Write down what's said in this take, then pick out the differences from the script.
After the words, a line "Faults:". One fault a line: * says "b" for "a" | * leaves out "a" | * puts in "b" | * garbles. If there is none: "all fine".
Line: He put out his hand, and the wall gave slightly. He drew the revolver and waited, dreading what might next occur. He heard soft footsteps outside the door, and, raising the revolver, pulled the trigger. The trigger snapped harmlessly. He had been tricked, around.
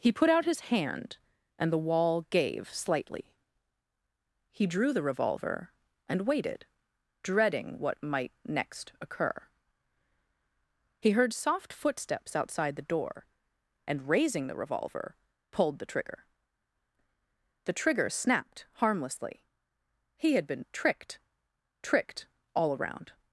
He put out his hand, and the wall gave slightly. He drew the revolver and waited, dreading what might next occur. He heard soft footsteps outside the door, and, raising the revolver, pulled the trigger. The trigger snapped harmlessly. He had been tricked, tricked all around.
Faults:
* puts in "tricked all"